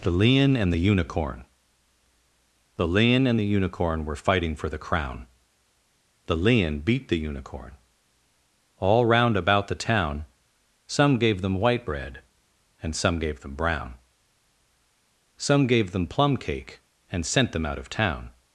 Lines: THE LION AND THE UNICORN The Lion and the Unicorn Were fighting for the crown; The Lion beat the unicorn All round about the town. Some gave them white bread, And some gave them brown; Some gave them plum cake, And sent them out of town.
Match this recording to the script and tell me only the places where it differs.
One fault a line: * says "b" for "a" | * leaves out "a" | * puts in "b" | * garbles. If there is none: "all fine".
all fine